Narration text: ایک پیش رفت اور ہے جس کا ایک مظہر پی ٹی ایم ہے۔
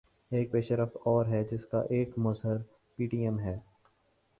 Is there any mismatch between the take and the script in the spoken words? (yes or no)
no